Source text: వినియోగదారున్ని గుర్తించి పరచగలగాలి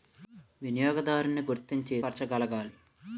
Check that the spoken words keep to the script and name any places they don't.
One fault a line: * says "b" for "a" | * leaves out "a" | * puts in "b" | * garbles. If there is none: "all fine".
all fine